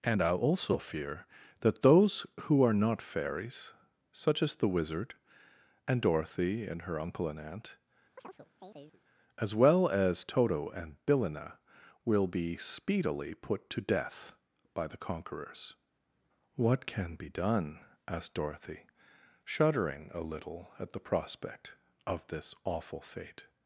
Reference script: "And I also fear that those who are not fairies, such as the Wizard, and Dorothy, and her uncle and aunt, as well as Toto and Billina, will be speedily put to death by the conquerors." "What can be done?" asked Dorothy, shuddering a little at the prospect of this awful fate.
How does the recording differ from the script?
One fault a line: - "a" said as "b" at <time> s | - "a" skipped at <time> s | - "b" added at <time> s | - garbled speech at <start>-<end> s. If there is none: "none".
none